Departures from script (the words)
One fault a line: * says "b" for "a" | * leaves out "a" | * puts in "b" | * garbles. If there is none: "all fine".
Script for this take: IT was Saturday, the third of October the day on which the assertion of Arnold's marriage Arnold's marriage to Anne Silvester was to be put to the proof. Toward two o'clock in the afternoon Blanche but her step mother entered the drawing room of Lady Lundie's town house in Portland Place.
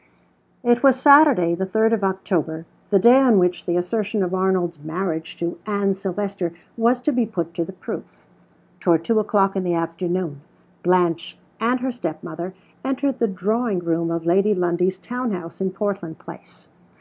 * leaves out "Arnold's marriage"
* says "and" for "but"